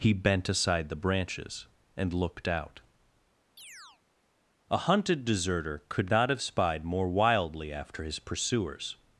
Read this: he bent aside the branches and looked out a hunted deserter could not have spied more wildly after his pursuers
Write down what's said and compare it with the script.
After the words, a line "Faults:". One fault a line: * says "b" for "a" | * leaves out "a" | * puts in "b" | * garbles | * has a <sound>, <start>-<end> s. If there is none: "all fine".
he bent aside the branches and looked out a hunted deserter could not have spied more wildly after his pursuers
Faults:
* has a chirp, 3.6-4.0 s